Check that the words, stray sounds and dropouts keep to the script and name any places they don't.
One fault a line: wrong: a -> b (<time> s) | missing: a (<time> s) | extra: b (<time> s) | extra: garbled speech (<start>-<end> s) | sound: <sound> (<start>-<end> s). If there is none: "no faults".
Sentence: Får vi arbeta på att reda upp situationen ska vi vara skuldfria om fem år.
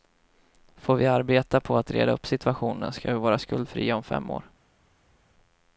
no faults